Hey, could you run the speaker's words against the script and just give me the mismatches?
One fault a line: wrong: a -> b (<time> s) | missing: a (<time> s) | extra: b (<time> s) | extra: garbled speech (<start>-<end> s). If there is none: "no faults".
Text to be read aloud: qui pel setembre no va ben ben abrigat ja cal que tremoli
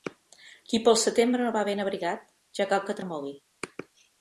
missing: ben (1.8 s)